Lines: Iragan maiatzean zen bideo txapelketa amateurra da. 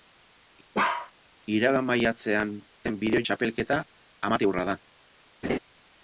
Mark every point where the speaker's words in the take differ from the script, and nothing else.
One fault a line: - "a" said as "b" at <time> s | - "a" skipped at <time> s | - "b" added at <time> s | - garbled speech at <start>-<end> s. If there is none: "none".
none